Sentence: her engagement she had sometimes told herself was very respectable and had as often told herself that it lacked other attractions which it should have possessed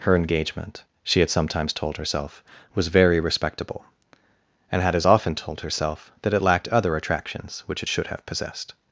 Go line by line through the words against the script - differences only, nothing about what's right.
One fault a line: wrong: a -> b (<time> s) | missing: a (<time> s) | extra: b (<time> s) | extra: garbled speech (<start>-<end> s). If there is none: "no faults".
no faults